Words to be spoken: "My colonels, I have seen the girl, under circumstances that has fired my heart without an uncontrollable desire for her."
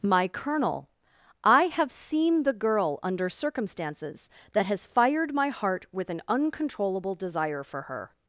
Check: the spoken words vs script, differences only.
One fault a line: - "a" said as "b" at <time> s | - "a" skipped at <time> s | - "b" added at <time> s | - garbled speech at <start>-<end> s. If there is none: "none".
- "colonels" said as "colonel" at 0.3 s
- "without" said as "with" at 5.9 s